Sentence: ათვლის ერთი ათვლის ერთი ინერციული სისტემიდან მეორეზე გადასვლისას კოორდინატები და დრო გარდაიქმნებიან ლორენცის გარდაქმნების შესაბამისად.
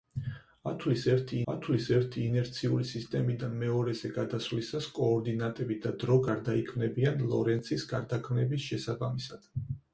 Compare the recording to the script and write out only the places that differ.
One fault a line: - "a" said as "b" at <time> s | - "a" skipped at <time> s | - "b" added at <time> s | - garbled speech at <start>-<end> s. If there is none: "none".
none